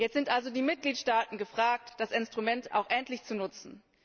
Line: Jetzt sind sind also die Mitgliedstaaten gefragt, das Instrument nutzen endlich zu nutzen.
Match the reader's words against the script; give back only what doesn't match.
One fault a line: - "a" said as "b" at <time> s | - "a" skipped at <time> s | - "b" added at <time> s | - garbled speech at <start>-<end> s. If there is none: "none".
- "sind" skipped at 0.3 s
- "nutzen" said as "auch" at 2.7 s